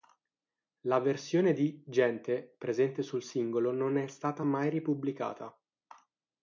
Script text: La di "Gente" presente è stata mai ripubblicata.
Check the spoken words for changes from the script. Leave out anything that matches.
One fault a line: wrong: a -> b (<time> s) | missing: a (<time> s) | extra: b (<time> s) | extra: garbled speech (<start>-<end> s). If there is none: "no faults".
extra: versione (1.0 s)
extra: sul singolo non (3.0 s)